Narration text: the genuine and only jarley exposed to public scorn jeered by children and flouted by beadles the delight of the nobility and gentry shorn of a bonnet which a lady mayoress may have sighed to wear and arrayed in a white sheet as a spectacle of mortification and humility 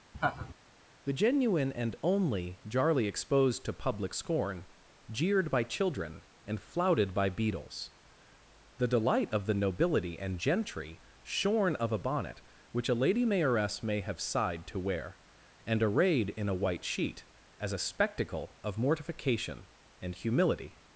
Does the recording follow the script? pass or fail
pass